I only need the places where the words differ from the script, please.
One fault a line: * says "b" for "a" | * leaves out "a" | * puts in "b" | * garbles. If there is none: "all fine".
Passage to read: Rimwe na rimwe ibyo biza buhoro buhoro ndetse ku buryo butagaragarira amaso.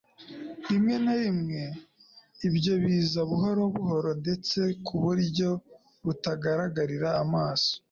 all fine